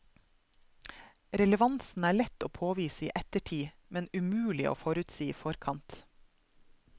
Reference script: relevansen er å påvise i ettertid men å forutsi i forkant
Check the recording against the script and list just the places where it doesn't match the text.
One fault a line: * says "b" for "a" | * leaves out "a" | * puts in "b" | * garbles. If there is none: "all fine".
* puts in "lett"
* puts in "umulig"